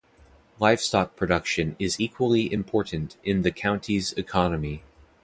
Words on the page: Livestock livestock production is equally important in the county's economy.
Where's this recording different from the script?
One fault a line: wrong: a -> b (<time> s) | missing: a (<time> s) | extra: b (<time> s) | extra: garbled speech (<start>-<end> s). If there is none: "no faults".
missing: livestock (1.1 s)